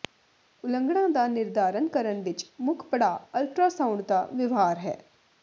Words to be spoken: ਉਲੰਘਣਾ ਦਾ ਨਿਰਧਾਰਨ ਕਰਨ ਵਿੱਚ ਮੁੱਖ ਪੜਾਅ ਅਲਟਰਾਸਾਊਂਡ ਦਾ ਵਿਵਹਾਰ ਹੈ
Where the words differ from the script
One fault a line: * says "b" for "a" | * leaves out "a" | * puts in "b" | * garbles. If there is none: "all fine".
all fine